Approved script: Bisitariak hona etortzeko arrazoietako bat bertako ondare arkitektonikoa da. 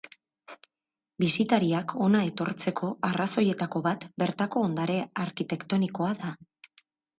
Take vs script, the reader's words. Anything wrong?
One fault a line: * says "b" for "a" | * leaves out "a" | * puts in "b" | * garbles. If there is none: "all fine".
all fine